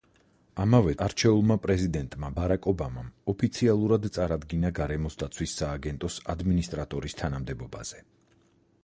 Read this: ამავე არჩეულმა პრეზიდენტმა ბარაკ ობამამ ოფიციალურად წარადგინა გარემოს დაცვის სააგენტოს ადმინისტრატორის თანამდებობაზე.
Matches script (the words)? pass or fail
pass